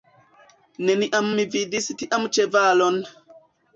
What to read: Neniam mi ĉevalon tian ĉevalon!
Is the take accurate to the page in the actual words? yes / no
no